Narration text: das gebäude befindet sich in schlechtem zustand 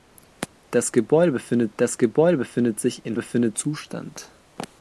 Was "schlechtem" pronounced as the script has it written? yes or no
no